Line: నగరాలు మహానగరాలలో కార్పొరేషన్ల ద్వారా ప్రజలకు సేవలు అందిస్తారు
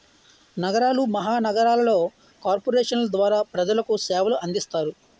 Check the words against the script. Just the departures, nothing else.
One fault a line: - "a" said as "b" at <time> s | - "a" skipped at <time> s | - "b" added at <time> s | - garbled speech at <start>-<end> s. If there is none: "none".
none